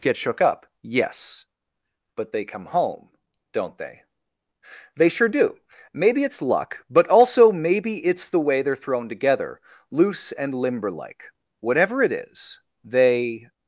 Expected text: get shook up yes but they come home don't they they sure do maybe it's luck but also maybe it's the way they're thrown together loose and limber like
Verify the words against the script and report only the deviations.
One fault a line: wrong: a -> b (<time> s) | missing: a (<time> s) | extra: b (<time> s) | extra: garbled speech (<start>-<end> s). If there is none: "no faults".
extra: whatever it is they (11.8 s)